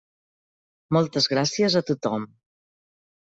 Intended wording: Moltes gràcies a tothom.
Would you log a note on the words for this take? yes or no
no